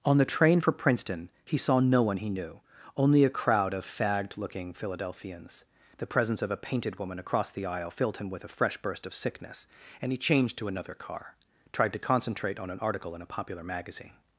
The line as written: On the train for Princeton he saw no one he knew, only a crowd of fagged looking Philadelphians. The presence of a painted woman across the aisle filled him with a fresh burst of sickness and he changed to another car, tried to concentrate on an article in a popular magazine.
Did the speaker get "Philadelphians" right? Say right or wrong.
right